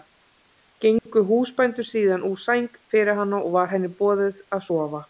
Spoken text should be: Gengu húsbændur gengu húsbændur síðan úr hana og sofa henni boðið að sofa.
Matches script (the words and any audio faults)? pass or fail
fail